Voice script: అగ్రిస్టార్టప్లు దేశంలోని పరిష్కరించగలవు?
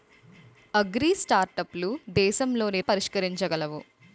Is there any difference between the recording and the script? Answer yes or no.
no